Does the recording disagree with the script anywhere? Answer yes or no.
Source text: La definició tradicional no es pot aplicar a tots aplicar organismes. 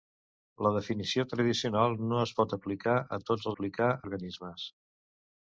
no